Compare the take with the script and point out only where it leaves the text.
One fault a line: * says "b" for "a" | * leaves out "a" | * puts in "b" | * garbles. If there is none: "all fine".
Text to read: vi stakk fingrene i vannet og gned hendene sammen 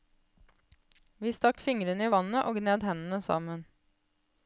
all fine